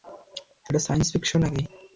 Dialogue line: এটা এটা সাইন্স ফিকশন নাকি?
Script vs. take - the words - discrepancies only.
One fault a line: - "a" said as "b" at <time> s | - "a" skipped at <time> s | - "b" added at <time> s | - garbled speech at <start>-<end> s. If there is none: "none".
- "এটা" skipped at 0.8 s